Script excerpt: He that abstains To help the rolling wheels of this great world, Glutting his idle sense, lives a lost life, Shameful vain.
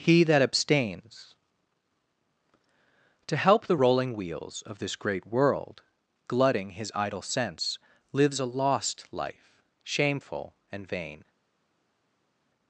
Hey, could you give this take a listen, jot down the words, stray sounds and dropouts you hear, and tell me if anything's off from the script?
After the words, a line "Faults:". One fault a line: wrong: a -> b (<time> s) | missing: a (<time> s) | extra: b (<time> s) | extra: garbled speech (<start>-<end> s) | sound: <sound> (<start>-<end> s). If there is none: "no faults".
He that abstains To help the rolling wheels of this great world, Glutting his idle sense, lives a lost life, Shameful and vain.
Faults:
extra: and (10.7 s)